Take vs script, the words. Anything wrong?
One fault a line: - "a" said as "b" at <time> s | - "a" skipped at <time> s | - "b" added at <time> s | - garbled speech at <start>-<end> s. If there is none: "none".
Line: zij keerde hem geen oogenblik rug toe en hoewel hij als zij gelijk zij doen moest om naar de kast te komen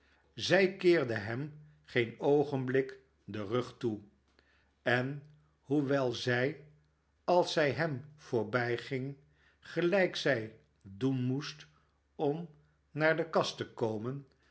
- "den" added at 3.2 s
- "hij" said as "zij" at 6.1 s
- "hem voorbijging" added at 7.7 s